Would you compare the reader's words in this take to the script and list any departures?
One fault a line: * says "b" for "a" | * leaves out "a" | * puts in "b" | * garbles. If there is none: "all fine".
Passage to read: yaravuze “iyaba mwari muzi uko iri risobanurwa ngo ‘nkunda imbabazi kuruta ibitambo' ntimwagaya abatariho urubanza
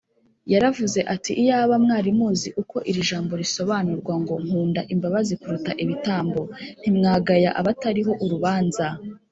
* puts in "ati"
* puts in "jambo"